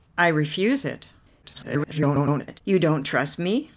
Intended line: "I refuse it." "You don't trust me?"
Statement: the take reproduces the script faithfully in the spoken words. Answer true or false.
false